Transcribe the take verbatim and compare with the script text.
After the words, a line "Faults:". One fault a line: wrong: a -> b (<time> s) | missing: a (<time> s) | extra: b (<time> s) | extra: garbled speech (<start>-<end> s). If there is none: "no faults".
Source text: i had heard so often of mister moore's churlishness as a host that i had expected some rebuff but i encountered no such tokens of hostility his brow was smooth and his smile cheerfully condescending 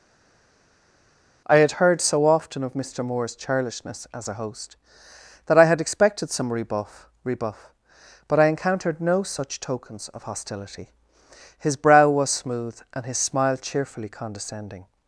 i had heard so often of mister moore's churlishness as a host that i had expected some rebuff rebuff but i encountered no such tokens of hostility his brow was smooth and his smile cheerfully condescending
Faults:
extra: rebuff (7.2 s)